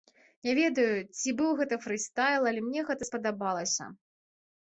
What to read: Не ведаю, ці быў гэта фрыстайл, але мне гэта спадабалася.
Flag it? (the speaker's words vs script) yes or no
no